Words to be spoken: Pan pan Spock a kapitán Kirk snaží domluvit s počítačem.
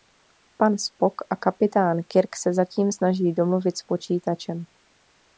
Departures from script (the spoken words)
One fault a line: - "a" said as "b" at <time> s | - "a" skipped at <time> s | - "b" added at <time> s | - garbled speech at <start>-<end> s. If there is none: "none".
- "pan" skipped at 0.8 s
- "se zatím" added at 2.4 s